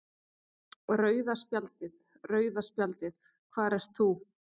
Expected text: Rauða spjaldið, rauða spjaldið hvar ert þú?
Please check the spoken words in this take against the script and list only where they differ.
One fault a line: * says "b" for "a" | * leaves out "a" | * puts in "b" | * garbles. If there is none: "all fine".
all fine